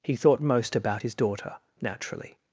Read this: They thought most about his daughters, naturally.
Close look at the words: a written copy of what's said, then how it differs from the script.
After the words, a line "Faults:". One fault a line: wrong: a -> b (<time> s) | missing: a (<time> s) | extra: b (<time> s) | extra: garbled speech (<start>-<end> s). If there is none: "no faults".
He thought most about his daughter, naturally.
Faults:
wrong: They -> He (0.0 s)
wrong: daughters -> daughter (1.1 s)